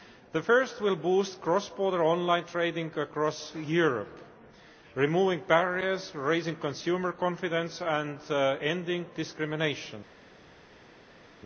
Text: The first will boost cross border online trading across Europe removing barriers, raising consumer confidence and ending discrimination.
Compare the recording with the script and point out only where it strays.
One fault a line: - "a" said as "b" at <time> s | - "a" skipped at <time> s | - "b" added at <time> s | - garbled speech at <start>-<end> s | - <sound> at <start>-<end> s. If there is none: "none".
none